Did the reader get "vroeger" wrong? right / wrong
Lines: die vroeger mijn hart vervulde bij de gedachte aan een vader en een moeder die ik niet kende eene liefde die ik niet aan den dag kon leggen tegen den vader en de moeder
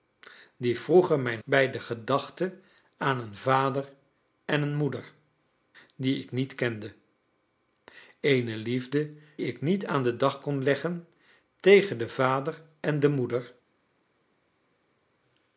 right